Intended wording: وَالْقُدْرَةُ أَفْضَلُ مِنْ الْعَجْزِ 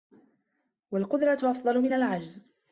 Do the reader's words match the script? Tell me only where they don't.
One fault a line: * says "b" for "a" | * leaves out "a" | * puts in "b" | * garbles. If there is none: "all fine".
all fine